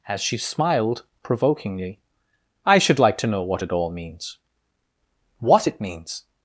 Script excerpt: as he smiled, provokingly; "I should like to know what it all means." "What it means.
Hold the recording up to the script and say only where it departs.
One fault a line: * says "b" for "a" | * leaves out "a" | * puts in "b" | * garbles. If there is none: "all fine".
* says "she" for "he"